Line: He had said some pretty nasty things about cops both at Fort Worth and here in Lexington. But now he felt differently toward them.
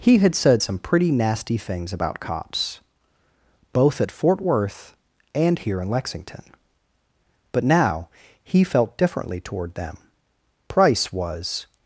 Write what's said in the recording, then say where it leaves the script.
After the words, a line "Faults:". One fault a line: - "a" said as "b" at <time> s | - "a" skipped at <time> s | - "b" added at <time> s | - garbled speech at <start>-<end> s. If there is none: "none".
He had said some pretty nasty things about cops both at Fort Worth and here in Lexington. But now he felt differently toward them. Price was
Faults:
- "Price was" added at 10.7 s